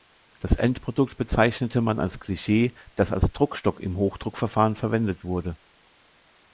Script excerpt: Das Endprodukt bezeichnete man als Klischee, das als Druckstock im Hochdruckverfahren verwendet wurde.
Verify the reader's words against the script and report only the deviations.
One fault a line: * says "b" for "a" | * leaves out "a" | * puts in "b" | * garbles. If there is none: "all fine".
all fine